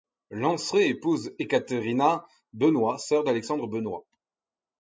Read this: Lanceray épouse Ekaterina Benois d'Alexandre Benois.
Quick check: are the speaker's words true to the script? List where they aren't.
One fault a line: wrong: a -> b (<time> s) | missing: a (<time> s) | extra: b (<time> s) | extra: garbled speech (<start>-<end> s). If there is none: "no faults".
extra: sœur (3.0 s)